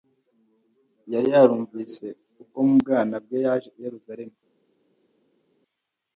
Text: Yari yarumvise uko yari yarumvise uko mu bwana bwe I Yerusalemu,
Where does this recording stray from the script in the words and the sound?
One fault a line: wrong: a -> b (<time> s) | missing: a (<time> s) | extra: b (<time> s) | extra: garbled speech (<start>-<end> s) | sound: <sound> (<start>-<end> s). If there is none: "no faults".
missing: yari yarumvise uko (2.6 s)
extra: Yaje (3.5 s)